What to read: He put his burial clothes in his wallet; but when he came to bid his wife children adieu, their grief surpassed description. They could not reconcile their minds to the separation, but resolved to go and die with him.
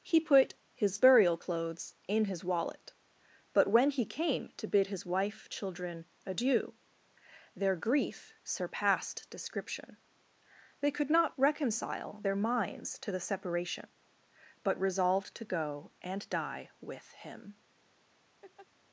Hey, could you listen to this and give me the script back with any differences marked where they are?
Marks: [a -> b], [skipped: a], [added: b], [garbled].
He put his burial clothes in his wallet; but when he came to bid his wife children adieu, their grief surpassed description. They could not reconcile their minds to the separation, but resolved to go and die with him.